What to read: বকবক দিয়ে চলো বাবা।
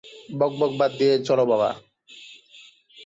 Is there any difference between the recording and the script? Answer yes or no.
yes